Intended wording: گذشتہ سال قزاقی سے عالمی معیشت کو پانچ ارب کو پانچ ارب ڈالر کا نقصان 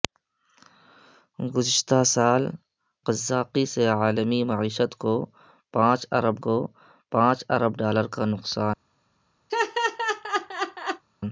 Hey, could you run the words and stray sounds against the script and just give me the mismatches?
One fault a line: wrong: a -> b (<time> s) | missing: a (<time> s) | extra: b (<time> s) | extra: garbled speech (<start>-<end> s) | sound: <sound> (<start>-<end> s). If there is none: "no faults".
sound: laugh (9.5-11.0 s)